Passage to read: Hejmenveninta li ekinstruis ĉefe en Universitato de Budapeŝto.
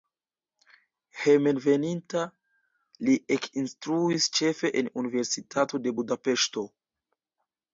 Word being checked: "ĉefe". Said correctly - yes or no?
yes